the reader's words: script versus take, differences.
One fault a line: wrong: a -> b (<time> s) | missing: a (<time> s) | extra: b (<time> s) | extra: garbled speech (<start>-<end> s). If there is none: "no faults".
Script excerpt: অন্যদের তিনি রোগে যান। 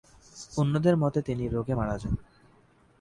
extra: মতে (1.0 s)
extra: মারা (1.7 s)